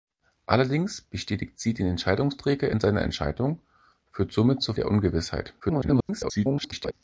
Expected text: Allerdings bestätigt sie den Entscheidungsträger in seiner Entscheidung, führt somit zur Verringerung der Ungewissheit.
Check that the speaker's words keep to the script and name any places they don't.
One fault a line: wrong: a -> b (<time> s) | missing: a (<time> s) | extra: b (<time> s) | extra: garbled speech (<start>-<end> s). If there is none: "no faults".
missing: Verringerung (4.7 s)
extra: garbled speech (5.6-6.9 s)